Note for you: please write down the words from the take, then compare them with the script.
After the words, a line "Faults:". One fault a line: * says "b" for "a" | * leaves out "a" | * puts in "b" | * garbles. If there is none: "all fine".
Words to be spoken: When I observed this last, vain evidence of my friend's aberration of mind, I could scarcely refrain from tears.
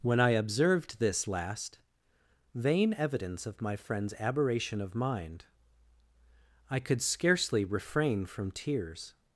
When I observed this last, vain evidence of my friend's aberration of mind, I could scarcely refrain from tears.
Faults:
all fine